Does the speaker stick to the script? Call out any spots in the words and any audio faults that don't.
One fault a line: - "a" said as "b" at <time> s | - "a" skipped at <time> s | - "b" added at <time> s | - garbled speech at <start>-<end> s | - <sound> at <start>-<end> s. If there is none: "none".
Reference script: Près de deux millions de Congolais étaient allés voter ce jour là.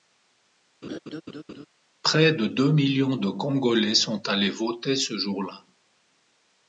- laugh at 0.8-1.7 s
- "étaient" said as "sont" at 3.9 s